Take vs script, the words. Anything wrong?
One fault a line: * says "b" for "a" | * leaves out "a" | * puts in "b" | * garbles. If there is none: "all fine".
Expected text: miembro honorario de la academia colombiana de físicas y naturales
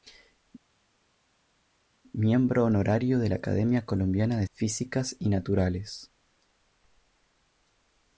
all fine